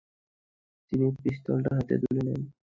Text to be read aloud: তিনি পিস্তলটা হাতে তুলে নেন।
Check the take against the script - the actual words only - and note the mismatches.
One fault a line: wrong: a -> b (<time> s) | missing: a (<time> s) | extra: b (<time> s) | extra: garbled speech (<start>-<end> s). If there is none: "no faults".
no faults